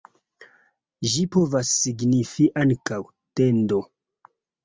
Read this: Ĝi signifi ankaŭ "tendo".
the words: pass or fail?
fail